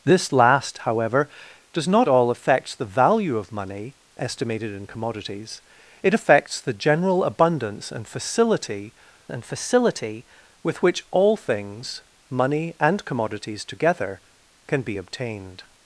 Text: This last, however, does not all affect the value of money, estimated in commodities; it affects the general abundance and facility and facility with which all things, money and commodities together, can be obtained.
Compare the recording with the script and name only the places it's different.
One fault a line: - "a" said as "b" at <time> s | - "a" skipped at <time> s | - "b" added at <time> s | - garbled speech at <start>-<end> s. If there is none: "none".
none